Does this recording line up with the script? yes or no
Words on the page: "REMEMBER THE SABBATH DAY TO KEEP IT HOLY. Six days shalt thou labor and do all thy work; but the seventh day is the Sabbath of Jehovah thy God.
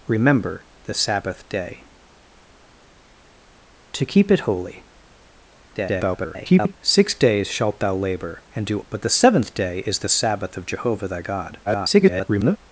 no